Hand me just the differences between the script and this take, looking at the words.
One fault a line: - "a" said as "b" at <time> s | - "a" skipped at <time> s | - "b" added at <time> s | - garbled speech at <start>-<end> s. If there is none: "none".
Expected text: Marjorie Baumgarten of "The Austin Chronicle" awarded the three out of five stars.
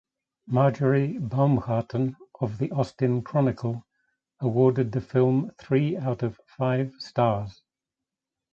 - "film" added at 5.0 s